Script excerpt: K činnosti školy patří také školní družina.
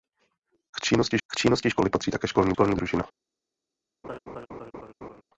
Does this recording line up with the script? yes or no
no